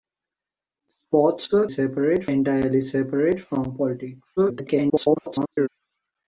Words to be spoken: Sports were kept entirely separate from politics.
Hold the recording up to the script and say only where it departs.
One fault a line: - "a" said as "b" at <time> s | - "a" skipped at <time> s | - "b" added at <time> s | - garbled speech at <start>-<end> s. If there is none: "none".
- "kept" said as "separate" at 1.6 s
- garbled speech at 4.4-5.7 s